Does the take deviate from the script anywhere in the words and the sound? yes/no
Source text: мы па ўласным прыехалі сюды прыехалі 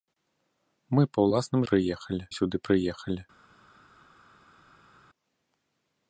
no